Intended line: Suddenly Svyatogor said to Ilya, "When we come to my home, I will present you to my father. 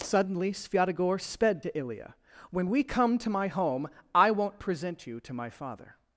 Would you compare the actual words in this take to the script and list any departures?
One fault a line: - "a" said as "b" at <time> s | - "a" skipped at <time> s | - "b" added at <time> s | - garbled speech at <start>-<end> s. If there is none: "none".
- "said" said as "sped" at 1.2 s
- "will" said as "won't" at 4.3 s